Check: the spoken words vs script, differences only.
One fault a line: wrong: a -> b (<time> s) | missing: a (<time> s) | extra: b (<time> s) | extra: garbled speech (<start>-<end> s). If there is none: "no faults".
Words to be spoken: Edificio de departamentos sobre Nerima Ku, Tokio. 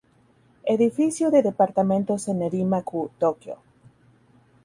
wrong: sobre -> en (2.3 s)